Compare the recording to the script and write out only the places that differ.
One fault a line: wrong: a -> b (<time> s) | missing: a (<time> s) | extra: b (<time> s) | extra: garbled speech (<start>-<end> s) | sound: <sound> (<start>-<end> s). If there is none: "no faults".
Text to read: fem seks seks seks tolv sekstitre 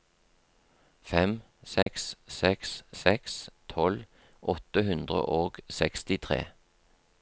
sound: dropout (1.8-1.9 s)
extra: åtte hundre og (4.5 s)